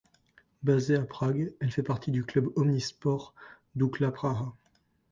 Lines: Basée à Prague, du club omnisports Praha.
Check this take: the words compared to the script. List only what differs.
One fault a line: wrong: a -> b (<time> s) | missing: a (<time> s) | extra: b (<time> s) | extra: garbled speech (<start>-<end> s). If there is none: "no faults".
extra: elle fait partie (1.6 s)
extra: Dukla (3.7 s)